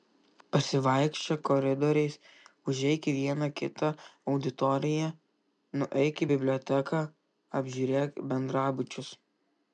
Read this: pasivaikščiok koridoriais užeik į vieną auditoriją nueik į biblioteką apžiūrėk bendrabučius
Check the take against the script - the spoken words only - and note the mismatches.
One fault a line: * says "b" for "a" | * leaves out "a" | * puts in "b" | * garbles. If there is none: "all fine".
* puts in "kitą"